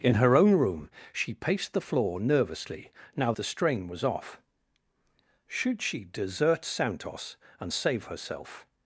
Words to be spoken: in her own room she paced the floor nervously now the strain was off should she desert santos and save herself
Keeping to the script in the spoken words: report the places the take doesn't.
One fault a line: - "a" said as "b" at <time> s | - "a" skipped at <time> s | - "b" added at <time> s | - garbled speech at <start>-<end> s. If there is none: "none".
none